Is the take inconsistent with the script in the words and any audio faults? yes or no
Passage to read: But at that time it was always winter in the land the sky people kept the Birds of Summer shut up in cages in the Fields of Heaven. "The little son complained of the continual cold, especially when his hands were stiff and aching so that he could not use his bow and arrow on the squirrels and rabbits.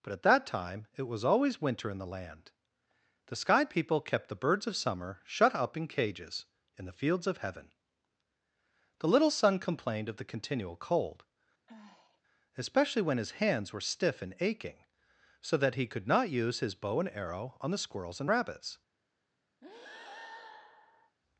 yes